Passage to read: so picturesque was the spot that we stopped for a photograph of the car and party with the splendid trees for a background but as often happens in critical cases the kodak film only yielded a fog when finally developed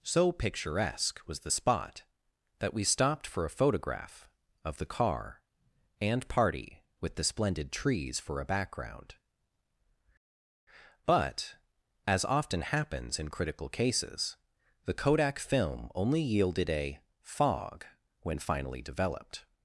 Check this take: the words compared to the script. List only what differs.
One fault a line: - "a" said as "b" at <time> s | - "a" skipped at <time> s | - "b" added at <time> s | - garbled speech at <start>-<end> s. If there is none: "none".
none